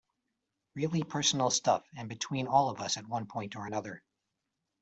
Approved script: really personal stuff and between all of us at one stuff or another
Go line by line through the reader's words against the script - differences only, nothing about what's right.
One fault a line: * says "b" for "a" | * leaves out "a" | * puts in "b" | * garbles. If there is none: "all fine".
* says "point" for "stuff"